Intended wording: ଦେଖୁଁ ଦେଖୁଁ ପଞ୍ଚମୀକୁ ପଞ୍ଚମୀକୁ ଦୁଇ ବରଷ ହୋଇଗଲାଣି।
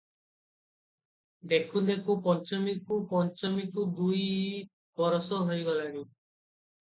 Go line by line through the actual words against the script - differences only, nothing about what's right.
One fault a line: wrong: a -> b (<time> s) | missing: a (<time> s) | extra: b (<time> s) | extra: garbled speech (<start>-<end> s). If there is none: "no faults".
no faults